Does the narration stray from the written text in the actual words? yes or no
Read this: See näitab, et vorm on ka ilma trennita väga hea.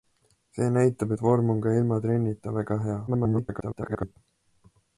yes